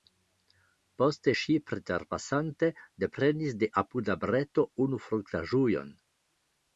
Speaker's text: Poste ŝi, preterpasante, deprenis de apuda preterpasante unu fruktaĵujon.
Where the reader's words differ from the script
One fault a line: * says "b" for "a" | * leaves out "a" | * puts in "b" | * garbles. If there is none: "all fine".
* says "breto" for "preterpasante"